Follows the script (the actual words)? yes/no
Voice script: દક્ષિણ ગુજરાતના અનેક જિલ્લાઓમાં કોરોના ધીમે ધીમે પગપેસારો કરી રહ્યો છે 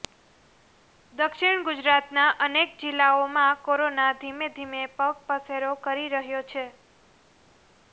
yes